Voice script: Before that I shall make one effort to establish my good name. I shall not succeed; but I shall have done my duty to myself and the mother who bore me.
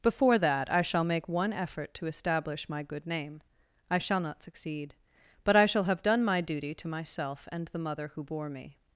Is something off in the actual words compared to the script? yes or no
no